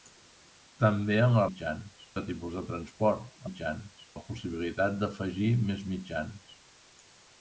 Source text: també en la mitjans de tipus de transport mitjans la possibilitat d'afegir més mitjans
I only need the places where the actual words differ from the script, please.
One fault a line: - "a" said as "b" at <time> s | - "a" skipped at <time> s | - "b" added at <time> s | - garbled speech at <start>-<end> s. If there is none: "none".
none